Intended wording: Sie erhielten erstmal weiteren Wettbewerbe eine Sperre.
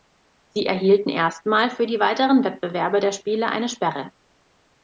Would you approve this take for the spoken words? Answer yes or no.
no